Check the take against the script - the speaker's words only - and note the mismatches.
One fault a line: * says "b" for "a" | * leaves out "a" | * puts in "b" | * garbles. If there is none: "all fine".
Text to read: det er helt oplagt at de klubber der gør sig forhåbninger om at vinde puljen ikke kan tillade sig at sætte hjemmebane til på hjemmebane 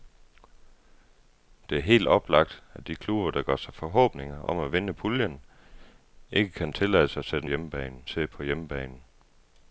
all fine